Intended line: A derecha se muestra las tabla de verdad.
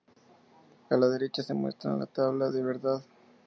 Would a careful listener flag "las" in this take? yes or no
yes